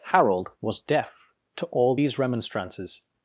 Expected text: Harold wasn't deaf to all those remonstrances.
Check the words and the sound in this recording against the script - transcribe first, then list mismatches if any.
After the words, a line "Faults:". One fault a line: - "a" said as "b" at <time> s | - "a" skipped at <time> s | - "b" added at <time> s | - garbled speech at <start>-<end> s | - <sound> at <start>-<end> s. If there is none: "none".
Harold was deaf to all these remonstrances.
Faults:
- "wasn't" said as "was" at 0.6 s
- "those" said as "these" at 1.9 s